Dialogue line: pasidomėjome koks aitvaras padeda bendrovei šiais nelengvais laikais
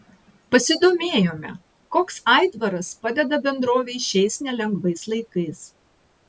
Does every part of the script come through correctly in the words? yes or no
yes